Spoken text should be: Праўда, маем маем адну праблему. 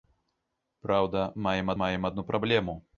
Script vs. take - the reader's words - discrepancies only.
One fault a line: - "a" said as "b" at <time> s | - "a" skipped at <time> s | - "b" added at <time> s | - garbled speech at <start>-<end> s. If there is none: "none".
none